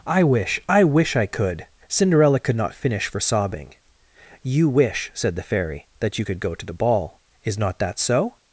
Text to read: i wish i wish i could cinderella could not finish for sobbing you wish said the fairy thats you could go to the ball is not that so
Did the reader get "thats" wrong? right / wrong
wrong